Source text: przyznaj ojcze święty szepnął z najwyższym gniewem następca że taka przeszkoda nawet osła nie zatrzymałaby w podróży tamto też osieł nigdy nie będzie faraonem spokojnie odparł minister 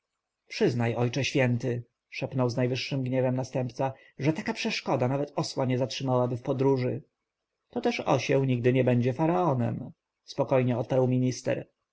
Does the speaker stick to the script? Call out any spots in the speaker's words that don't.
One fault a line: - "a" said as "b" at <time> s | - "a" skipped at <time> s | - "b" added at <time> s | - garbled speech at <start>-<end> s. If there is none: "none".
- "tamto" said as "to" at 7.7 s